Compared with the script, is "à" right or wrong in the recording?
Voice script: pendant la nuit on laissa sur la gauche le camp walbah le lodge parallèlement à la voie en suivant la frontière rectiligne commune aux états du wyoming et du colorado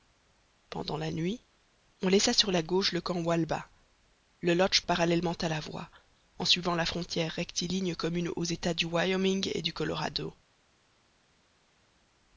right